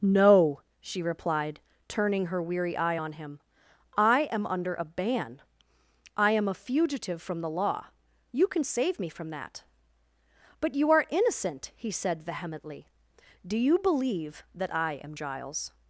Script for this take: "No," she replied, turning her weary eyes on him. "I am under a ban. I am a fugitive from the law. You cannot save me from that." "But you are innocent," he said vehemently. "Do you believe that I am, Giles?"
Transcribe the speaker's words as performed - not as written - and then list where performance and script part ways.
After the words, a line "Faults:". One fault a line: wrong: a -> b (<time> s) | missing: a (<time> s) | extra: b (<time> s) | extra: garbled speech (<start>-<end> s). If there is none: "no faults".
"No," she replied, turning her weary eye on him. "I am under a ban. I am a fugitive from the law. You can save me from that." "But you are innocent," he said vehemently. "Do you believe that I am, Giles?"
Faults:
wrong: eyes -> eye (2.8 s)
wrong: cannot -> can (8.5 s)